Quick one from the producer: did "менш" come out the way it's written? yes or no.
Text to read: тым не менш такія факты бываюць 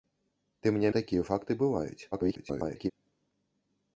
no